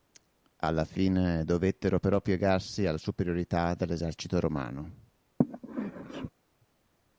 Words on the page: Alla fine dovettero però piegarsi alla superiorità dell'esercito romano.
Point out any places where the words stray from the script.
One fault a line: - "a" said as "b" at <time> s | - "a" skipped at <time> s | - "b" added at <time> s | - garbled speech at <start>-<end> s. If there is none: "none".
none